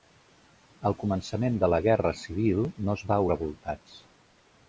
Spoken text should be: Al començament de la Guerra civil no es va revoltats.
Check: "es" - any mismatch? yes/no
no